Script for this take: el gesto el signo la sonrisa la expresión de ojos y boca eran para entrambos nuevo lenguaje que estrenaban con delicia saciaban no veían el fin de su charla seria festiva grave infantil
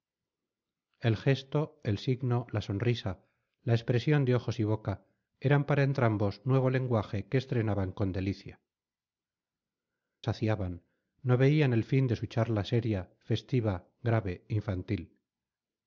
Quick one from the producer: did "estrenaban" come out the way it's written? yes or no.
yes